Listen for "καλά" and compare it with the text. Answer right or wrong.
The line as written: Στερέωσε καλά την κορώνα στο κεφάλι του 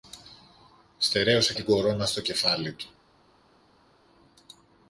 wrong